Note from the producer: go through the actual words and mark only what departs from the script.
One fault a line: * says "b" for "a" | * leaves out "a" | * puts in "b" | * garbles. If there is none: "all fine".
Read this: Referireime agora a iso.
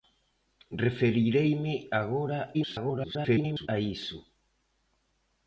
* garbles